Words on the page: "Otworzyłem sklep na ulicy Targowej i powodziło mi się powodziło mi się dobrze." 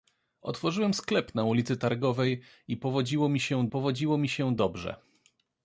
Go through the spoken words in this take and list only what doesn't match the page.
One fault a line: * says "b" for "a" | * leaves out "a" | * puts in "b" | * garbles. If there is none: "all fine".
all fine